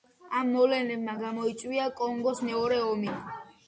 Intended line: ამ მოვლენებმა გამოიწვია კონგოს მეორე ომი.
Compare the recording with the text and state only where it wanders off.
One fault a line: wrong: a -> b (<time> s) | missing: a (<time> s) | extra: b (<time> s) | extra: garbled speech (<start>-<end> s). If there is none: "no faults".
no faults